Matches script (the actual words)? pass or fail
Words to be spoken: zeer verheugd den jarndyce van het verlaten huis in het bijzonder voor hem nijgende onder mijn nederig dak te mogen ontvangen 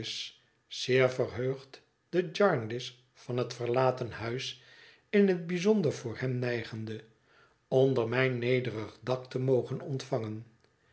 pass